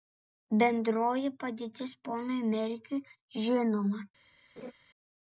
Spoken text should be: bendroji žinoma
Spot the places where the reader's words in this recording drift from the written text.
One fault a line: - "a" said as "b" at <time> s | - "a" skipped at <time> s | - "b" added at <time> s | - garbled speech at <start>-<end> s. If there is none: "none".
- "padėtis ponui merkiui" added at 1.4 s